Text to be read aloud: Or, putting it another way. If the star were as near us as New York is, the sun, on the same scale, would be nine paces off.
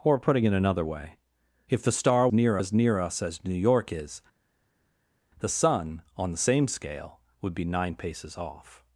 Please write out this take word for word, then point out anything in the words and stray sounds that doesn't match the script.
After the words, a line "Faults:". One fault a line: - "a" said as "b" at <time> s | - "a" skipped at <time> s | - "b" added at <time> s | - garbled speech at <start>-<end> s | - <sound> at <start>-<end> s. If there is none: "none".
Or, putting it another way. If the star near as near us as New York is, the sun, on the same scale, would be nine paces off.
Faults:
- "were" said as "near" at 2.3 s